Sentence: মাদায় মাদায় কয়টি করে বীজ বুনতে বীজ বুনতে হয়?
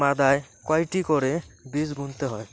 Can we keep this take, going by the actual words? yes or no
no